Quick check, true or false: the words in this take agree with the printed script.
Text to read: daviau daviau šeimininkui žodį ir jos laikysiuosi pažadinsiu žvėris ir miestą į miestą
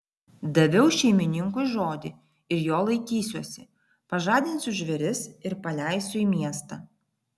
false